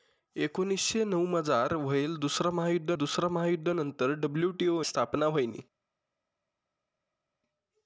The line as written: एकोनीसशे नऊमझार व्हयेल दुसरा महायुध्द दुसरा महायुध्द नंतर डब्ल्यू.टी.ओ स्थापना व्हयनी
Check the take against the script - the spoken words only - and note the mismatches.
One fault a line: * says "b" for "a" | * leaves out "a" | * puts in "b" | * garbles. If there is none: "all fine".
all fine